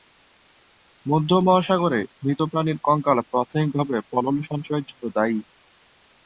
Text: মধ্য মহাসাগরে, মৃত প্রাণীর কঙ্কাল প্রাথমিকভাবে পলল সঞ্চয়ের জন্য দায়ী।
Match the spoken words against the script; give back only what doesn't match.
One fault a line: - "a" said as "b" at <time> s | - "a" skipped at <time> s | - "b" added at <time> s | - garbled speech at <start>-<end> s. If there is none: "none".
none